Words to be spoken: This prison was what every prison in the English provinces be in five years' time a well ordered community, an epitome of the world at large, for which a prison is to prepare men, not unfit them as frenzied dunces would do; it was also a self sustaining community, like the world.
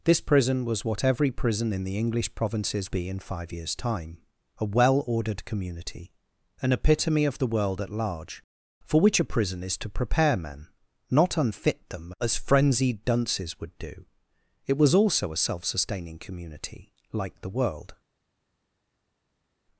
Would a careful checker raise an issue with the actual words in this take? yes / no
no